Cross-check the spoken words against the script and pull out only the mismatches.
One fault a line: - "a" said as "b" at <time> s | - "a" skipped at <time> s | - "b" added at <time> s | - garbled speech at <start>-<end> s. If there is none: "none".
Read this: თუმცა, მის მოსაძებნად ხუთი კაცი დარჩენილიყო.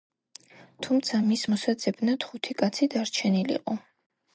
none